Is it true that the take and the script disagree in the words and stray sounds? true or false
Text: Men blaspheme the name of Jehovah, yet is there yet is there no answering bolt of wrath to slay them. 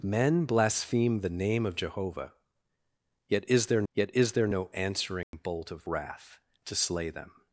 true